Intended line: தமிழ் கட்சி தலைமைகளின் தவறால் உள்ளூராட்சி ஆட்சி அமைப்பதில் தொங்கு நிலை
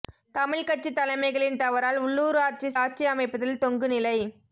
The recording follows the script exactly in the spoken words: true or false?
true